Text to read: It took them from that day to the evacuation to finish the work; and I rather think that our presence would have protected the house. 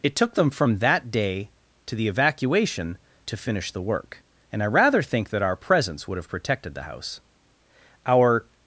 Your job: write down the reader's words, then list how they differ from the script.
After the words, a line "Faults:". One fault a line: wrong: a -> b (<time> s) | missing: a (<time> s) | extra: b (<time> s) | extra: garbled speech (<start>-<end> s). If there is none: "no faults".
It took them from that day to the evacuation to finish the work; and I rather think that our presence would have protected the house. Our
Faults:
extra: Our (8.1 s)